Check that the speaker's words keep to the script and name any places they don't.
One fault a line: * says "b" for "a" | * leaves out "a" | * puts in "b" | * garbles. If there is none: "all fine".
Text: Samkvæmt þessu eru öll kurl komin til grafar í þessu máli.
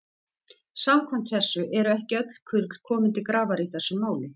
* puts in "ekki"